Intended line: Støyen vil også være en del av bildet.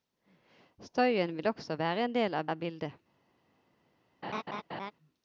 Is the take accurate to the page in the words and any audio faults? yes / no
no